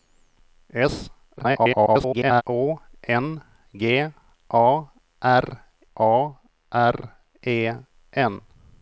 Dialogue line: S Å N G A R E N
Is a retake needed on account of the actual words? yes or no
yes